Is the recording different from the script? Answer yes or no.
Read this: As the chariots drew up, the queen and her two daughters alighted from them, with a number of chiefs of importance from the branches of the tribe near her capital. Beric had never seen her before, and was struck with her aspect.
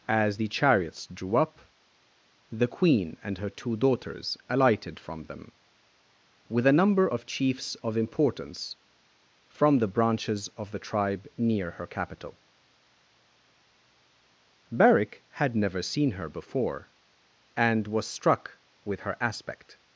no